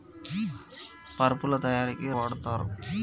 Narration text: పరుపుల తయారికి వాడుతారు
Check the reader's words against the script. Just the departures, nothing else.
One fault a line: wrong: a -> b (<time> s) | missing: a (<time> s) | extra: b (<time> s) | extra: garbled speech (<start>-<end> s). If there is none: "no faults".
no faults